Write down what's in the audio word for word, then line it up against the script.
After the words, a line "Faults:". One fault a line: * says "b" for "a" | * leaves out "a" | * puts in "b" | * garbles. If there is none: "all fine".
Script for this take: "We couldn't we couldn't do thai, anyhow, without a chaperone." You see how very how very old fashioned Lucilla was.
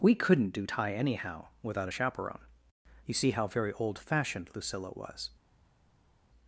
"We couldn't do thai, anyhow, without a chaperone." You see how very old fashioned Lucilla was.
Faults:
* leaves out "we couldn't"
* leaves out "how very"